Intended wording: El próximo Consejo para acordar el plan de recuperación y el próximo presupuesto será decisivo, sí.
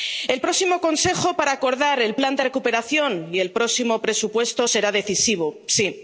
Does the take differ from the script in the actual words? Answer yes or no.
no